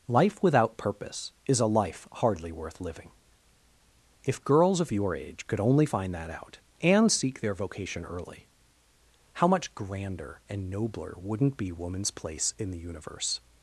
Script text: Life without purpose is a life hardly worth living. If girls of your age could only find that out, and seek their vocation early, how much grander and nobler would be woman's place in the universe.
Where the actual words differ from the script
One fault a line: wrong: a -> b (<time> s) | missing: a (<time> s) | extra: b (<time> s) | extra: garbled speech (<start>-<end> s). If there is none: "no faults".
wrong: would -> wouldn't (11.2 s)